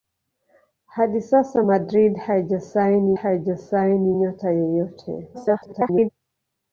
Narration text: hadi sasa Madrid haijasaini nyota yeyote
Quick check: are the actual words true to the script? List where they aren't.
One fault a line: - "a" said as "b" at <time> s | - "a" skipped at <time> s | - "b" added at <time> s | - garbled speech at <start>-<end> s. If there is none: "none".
- "haijasaini" added at 3.1 s
- garbled speech at 5.3-6.1 s